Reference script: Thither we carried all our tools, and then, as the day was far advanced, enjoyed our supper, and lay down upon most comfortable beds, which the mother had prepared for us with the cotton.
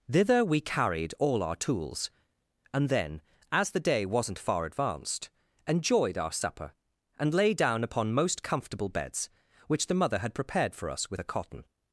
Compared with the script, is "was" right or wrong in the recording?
wrong